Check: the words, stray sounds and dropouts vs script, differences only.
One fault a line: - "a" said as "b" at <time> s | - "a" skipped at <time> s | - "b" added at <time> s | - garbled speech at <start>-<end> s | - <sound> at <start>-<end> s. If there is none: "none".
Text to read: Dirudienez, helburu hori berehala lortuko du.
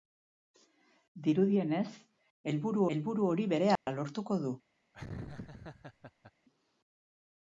- "helburu" added at 3.0 s
- dropout at 3.8-3.9 s
- laugh at 4.9-6.3 s